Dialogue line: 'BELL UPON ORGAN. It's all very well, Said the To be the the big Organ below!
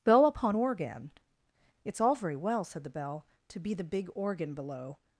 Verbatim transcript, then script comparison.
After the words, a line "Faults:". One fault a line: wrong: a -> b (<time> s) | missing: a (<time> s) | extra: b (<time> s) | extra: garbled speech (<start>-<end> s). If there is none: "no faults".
'BELL UPON ORGAN. It's all very well, Said the Bell, To be the big Organ below!
Faults:
extra: Bell (2.9 s)
missing: the (3.8 s)